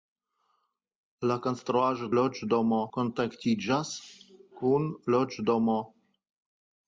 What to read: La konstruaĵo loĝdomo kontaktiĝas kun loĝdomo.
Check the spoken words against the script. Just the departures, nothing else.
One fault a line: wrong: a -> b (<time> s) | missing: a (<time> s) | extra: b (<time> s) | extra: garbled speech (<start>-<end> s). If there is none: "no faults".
no faults